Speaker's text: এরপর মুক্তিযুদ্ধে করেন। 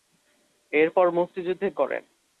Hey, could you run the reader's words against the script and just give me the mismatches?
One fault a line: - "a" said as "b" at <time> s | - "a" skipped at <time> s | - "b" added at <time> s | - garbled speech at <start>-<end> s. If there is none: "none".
none